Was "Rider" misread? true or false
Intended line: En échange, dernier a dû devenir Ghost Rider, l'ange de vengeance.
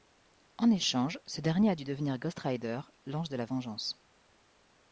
false